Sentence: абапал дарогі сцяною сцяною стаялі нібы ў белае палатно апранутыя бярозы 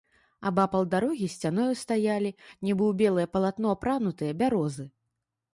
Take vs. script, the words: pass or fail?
fail